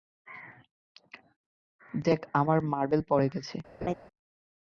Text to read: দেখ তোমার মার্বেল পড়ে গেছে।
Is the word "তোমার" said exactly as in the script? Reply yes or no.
no